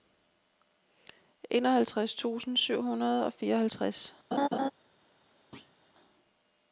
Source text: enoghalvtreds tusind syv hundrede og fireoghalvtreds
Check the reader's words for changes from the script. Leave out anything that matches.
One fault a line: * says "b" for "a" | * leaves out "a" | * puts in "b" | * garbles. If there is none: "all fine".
all fine